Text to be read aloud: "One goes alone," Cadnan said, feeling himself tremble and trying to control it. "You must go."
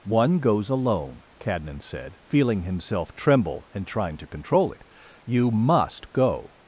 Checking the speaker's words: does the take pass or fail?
pass